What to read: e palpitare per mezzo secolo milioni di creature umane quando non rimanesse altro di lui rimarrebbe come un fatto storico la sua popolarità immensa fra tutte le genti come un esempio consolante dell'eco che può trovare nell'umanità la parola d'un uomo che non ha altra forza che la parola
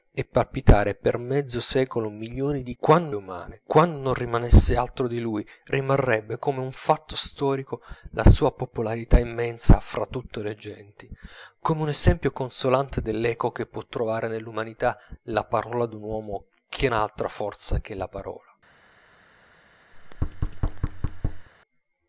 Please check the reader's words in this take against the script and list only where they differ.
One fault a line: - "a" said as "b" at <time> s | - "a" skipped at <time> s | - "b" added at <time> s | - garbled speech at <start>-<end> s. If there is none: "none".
- "creature" said as "quando" at 2.8 s
- "non" skipped at 16.9 s